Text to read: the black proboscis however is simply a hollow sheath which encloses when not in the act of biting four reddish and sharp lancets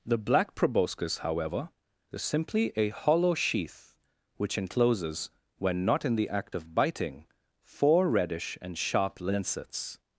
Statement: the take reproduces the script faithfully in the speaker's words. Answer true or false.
true